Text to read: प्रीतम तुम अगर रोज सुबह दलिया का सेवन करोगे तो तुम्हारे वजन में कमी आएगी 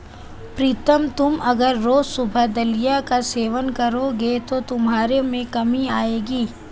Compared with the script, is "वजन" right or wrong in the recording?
wrong